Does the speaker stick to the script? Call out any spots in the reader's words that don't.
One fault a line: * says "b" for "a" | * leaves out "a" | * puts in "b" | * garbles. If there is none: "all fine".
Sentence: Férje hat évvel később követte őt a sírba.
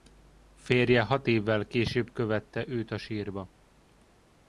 all fine